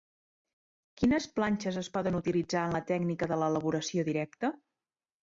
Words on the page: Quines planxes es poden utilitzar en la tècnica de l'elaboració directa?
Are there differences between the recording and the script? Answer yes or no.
no